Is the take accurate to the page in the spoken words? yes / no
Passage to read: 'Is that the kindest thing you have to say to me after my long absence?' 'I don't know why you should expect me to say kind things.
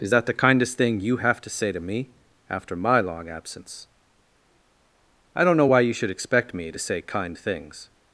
yes